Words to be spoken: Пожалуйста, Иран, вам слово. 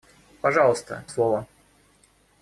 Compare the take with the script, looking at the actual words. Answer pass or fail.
fail